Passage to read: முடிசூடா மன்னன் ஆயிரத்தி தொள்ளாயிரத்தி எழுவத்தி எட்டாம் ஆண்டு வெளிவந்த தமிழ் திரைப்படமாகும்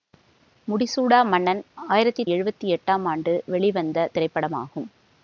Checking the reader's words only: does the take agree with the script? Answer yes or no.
no